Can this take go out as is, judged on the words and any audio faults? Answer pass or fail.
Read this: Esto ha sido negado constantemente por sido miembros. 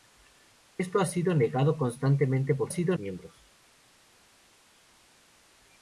pass